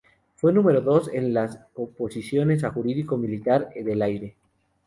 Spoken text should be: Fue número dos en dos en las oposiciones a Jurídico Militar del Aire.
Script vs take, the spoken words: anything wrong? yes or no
yes